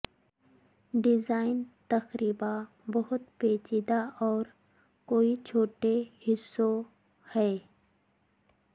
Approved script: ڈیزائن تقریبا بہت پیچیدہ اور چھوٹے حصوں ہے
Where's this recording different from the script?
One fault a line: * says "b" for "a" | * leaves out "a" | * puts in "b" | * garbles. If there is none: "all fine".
* puts in "کوئی"